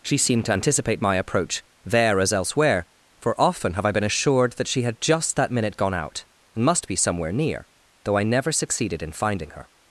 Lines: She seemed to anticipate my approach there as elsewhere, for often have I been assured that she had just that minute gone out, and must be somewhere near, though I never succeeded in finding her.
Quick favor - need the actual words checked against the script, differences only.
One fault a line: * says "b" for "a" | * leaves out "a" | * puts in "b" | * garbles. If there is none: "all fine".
all fine